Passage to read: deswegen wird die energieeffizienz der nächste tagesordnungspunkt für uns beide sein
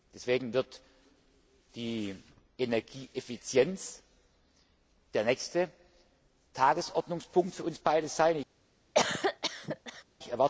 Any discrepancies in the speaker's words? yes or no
no